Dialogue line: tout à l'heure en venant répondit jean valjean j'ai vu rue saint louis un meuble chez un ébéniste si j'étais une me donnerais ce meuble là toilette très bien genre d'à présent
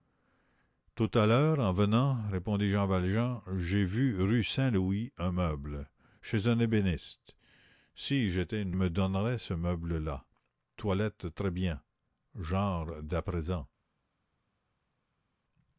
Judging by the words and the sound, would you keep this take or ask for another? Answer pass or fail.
pass